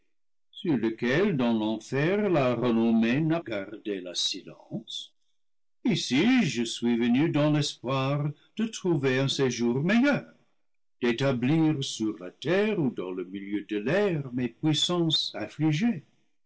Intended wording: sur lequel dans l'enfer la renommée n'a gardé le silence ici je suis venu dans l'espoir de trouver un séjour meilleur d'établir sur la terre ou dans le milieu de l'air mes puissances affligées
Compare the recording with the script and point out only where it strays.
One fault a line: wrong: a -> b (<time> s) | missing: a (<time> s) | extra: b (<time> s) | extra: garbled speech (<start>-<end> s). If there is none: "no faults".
no faults